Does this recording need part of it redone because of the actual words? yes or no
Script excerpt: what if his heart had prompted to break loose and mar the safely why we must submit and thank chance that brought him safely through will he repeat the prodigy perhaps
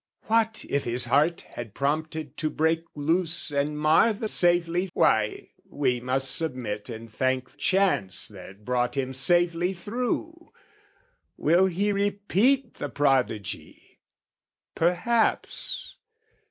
no